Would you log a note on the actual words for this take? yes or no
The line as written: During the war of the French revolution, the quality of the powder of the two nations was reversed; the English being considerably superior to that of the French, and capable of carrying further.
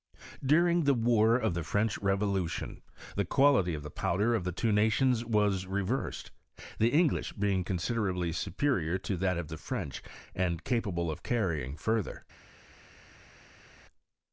no